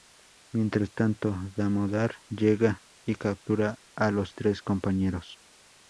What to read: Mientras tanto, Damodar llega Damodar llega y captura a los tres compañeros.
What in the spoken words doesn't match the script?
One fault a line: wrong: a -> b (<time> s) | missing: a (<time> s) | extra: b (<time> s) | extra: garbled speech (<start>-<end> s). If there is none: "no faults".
missing: Damodar llega (2.8 s)